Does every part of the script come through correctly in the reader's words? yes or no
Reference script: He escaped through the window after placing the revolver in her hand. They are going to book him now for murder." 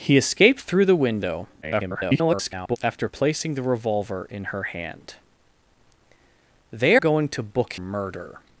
no